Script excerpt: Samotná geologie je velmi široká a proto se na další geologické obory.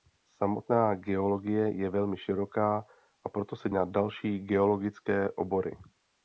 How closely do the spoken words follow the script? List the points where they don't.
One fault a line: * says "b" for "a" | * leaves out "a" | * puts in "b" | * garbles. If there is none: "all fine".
all fine